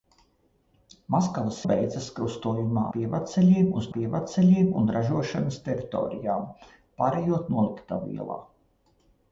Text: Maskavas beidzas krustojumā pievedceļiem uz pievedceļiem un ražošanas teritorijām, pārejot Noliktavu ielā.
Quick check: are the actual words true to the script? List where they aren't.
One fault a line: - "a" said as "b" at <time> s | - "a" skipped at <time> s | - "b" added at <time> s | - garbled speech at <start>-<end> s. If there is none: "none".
none